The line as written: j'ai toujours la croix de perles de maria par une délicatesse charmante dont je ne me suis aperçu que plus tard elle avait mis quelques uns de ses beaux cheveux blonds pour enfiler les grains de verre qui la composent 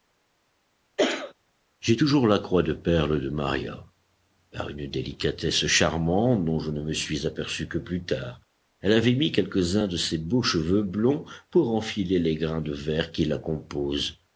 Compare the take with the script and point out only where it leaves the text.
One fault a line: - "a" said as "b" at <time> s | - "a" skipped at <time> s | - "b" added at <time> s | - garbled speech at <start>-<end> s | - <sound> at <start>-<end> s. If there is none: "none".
- cough at 1.0-1.3 s